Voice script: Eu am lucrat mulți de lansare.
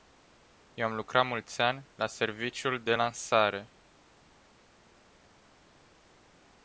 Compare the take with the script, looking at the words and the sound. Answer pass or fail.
fail